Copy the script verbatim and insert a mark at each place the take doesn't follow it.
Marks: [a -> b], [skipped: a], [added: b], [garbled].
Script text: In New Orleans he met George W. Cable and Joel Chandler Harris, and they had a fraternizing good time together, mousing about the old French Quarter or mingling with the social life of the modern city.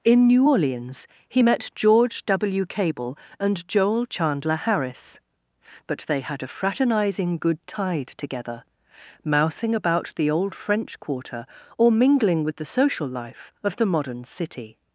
In New Orleans he met George W. Cable and Joel Chandler Harris, [and -> but] they had a fraternizing good [time -> tide] together, mousing about the old French Quarter or mingling with the social life of the modern city.